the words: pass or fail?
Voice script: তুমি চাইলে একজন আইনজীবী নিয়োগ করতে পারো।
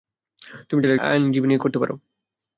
fail